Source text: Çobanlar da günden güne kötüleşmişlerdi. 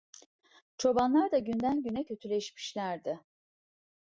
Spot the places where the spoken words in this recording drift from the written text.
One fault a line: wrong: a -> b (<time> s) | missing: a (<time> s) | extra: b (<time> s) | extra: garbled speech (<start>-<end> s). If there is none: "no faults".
no faults